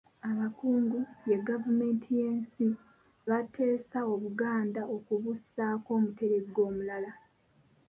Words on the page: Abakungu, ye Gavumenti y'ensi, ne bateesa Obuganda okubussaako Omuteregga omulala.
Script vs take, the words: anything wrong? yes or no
yes